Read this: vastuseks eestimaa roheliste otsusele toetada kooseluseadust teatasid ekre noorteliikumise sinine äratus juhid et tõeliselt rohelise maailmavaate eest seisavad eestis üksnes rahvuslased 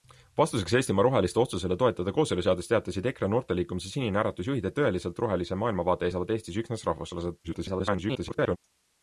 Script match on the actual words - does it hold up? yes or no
no